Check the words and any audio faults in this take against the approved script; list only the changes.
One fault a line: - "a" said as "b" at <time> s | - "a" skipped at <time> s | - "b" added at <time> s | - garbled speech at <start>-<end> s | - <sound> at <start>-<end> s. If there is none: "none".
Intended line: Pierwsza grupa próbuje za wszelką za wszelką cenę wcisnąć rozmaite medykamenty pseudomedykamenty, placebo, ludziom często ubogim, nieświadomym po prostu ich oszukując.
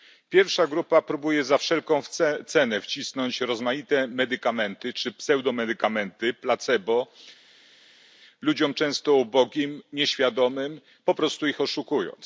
- "za wszelką" skipped at 2.0 s
- "czy" added at 4.9 s